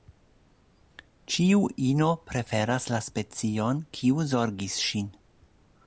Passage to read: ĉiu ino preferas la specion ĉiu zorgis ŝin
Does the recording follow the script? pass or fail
fail